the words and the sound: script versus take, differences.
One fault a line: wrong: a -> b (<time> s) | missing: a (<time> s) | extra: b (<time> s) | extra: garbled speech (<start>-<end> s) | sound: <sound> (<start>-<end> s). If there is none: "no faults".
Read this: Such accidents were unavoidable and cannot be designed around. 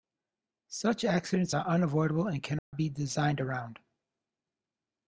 wrong: were -> are (1.5 s)
sound: dropout (2.6-2.7 s)